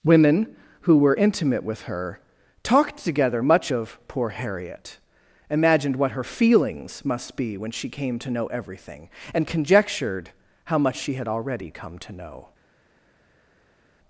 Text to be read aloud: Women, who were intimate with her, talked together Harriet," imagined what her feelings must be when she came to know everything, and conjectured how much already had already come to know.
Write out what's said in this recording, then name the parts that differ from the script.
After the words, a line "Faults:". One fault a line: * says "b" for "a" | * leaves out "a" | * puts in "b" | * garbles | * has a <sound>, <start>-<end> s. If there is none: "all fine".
Women, who were intimate with her, talked together much of "poor Harriet," imagined what her feelings must be when she came to know everything, and conjectured how much she had already come to know.
Faults:
* puts in "much of poor"
* says "she" for "already"